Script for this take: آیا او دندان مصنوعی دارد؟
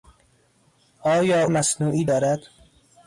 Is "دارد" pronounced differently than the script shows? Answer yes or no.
no